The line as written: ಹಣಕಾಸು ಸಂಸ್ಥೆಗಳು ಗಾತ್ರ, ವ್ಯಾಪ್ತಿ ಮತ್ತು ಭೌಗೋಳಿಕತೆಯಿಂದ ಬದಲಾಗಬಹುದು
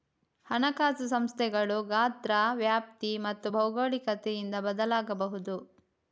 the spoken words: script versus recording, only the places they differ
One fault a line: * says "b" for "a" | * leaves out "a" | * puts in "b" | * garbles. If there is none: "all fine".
all fine